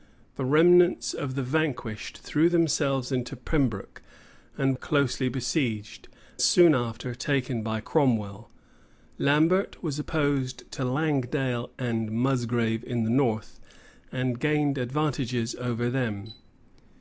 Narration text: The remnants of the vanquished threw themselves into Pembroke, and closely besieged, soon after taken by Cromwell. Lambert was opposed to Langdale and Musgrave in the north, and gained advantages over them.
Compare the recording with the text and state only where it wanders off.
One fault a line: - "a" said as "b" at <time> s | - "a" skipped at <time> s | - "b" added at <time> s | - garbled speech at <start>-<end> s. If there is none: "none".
none